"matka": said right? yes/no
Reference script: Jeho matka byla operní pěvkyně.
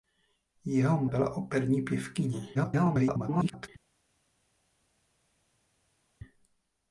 no